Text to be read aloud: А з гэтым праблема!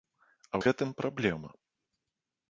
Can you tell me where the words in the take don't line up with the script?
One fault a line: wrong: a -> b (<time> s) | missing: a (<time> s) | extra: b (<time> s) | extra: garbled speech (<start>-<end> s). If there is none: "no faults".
no faults